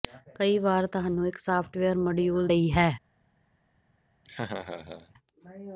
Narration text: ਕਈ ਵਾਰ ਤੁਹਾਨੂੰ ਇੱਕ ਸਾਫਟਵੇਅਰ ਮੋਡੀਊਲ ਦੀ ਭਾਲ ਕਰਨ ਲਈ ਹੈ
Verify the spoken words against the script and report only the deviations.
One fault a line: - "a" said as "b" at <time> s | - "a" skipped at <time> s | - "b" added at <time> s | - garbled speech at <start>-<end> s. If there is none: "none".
- "ਦੀ ਭਾਲ ਕਰਨ" skipped at 2.5 s